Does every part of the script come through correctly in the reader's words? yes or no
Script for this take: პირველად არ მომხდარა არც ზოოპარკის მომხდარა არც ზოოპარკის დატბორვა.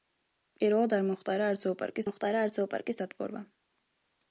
yes